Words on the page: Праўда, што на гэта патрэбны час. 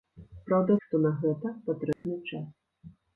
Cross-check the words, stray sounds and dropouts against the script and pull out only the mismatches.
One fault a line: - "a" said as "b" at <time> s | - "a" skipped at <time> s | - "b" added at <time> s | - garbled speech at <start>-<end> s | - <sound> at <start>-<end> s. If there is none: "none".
- dropout at 1.9-2.0 s